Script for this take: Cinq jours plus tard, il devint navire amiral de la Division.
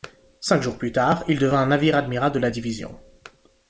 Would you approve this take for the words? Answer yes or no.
yes